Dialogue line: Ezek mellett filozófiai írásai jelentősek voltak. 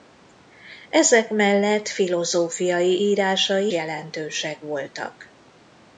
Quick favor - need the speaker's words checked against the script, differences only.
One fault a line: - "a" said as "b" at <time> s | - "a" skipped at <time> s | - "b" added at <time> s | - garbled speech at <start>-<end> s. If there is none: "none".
none